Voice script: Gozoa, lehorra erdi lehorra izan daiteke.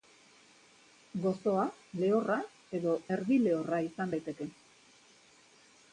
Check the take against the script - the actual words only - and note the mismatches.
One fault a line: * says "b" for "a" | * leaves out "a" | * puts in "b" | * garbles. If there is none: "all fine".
* puts in "edo"